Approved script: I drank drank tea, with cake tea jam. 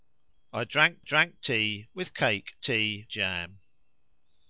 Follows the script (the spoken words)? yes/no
yes